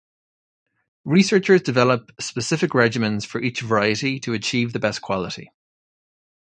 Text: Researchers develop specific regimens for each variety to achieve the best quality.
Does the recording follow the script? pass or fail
pass